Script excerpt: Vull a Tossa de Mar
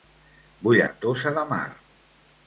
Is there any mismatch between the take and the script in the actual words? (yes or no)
no